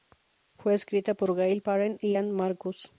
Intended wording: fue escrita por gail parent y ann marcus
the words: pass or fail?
pass